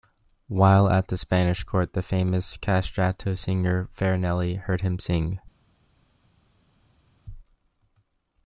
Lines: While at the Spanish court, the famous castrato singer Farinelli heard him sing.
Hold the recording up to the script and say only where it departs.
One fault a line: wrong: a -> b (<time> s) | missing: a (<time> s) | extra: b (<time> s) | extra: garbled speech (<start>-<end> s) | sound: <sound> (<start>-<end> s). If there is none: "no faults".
no faults